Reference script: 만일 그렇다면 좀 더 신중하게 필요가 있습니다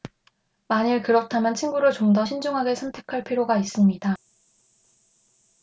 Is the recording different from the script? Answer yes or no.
yes